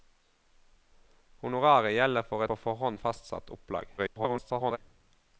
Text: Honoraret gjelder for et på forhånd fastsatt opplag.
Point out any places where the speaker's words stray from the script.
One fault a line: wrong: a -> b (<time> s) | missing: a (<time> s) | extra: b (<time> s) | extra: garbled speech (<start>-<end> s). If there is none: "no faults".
missing: et (2.5 s)
extra: garbled speech (4.0-4.8 s)